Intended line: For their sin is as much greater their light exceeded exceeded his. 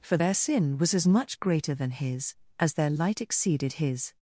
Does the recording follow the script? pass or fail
fail